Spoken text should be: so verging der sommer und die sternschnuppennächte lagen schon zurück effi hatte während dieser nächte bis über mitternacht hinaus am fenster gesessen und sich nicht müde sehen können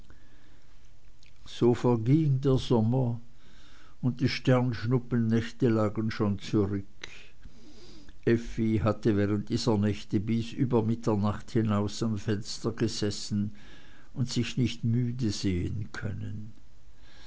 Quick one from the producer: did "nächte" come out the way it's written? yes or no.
yes